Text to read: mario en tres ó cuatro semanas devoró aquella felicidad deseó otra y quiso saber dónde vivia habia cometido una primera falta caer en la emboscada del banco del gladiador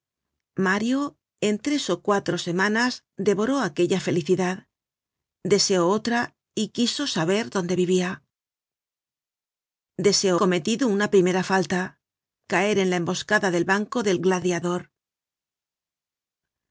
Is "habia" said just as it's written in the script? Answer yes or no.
no